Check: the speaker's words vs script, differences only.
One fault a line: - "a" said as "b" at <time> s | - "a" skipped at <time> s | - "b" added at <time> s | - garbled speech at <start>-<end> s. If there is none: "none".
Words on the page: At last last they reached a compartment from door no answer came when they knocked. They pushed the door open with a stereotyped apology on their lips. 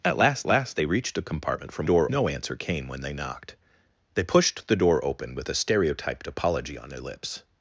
none